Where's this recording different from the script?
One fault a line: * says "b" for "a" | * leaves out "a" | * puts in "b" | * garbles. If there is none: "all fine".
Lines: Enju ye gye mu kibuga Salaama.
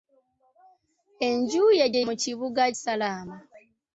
all fine